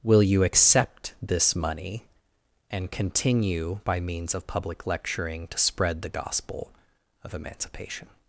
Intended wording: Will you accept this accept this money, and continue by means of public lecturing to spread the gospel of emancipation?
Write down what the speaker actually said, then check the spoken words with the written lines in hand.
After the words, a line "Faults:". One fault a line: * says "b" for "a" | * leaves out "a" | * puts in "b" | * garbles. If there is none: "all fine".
Will you accept this money, and continue by means of public lecturing to spread the gospel of emancipation?
Faults:
* leaves out "accept this"